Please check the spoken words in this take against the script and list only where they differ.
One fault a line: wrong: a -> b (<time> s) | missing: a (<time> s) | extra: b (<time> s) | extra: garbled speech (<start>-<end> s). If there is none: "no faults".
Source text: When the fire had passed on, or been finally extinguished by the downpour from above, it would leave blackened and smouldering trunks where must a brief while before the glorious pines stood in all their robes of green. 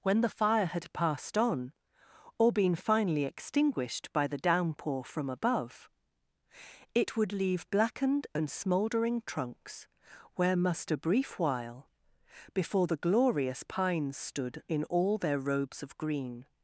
no faults